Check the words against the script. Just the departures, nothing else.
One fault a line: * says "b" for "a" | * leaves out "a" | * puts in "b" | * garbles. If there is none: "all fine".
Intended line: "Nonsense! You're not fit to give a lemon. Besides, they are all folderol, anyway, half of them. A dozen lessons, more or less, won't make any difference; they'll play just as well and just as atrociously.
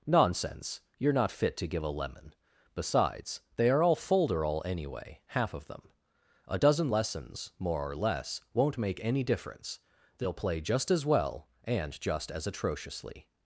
all fine